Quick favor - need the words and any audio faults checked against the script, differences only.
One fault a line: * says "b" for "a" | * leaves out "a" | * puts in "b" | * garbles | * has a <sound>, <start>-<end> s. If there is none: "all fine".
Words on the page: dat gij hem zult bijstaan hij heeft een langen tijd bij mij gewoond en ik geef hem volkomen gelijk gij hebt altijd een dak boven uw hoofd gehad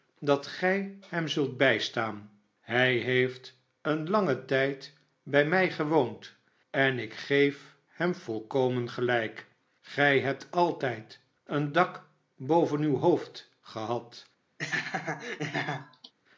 * has a laugh, 14.6-16.1 s